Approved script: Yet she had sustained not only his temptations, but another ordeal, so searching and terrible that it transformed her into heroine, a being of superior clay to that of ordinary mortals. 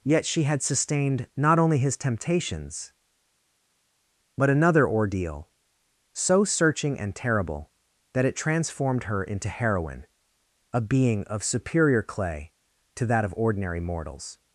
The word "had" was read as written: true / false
true